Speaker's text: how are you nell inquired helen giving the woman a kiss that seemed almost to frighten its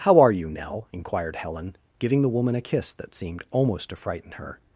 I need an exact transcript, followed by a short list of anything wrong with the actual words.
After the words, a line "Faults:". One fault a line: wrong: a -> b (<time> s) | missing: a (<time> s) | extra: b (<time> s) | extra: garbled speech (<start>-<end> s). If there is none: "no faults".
how are you nell inquired helen giving the woman a kiss that seemed almost to frighten her
Faults:
wrong: its -> her (4.3 s)